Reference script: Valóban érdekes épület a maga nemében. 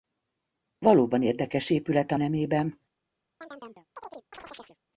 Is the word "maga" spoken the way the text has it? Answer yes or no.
no